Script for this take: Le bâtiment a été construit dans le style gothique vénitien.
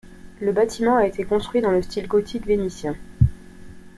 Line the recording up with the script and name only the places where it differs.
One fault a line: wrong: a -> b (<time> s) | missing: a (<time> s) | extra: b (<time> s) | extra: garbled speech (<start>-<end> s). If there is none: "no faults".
no faults